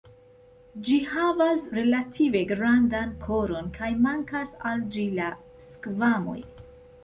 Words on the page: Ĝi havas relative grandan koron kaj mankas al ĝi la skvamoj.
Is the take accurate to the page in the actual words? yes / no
yes